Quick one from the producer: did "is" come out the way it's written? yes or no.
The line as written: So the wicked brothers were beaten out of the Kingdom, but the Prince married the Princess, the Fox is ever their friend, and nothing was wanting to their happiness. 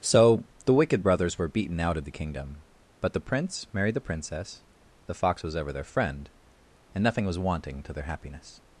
no